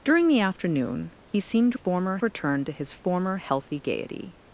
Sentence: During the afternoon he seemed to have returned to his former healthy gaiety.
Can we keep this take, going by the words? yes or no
no